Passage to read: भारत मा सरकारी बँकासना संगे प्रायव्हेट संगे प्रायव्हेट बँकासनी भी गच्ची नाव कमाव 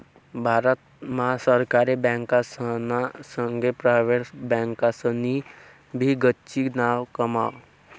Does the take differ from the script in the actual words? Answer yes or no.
yes